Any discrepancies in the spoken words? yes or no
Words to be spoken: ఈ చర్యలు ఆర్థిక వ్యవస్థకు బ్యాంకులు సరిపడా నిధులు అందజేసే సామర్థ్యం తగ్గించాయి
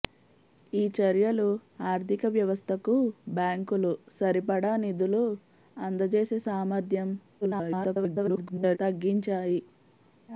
yes